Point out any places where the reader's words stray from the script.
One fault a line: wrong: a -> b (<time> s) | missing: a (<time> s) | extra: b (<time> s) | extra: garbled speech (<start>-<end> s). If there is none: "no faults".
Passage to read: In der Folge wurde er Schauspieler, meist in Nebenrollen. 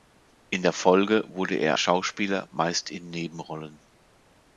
no faults